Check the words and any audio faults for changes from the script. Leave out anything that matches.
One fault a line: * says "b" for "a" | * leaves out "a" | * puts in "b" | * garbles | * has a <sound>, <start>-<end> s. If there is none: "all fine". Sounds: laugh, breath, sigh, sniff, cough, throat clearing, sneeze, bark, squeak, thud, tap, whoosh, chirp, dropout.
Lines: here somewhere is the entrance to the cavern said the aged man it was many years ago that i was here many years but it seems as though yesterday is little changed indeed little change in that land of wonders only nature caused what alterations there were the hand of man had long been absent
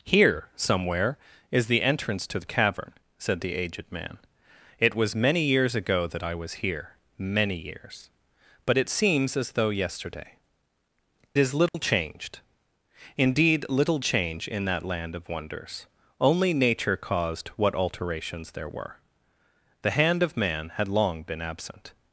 * has a dropout, 11.7-11.7 s